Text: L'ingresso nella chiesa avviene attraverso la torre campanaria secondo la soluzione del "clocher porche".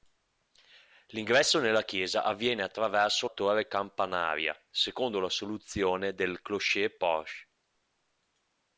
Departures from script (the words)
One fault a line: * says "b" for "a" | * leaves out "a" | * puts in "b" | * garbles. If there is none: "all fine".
* leaves out "la"